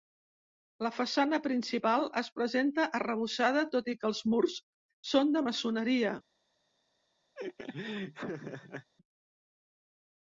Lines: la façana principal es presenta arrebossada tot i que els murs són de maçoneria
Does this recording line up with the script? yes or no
yes